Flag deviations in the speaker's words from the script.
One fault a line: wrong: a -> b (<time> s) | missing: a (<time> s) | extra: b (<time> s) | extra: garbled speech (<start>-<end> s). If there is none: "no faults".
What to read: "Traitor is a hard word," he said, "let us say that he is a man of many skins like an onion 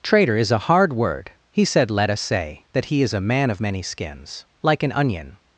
no faults